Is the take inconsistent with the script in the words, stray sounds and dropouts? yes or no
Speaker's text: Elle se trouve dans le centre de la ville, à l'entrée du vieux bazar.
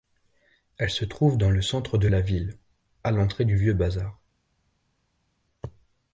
no